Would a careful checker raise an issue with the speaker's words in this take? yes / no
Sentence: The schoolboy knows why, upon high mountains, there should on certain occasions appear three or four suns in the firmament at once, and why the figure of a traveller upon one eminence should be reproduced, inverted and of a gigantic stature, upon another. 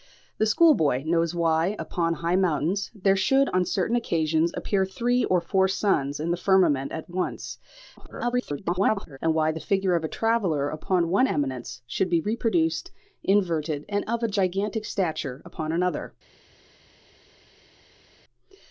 yes